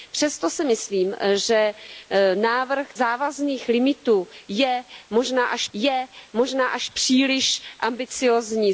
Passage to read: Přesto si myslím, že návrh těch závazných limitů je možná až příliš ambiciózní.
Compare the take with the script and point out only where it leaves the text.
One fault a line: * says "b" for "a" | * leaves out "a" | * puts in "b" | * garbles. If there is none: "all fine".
* leaves out "těch"
* puts in "je možná až"